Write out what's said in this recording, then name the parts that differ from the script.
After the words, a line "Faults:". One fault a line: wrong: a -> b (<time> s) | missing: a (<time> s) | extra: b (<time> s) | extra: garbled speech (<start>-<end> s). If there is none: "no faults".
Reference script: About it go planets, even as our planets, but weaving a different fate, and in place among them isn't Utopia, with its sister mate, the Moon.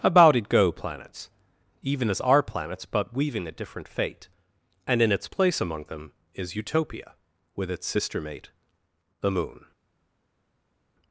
About it go planets, even as our planets, but weaving a different fate, and in its place among them is Utopia, with its sister mate, the Moon.
Faults:
extra: its (5.1 s)
wrong: isn't -> is (6.3 s)